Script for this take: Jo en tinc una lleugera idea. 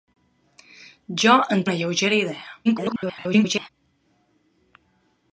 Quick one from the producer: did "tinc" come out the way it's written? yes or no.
no